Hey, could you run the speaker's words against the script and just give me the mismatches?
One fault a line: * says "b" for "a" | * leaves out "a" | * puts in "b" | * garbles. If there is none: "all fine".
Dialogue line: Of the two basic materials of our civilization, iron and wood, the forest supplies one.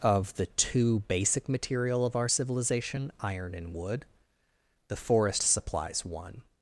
* says "material" for "materials"